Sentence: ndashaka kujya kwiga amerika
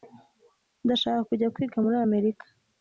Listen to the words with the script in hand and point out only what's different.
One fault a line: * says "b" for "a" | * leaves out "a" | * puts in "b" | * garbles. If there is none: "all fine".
* puts in "muri"